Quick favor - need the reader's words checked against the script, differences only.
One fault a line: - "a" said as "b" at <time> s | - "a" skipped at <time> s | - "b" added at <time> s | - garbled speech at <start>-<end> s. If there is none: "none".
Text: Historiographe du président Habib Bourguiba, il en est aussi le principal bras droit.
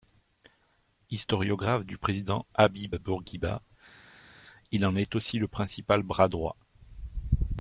none